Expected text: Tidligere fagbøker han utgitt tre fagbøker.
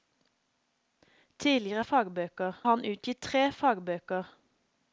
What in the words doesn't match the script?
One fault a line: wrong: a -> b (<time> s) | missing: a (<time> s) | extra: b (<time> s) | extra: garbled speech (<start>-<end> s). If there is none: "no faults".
no faults